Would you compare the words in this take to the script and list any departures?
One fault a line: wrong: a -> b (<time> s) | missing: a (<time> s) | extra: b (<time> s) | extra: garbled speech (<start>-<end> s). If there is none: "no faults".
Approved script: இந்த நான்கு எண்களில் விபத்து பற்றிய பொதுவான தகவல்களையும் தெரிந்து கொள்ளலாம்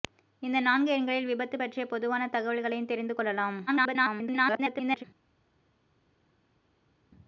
extra: garbled speech (3.7-5.0 s)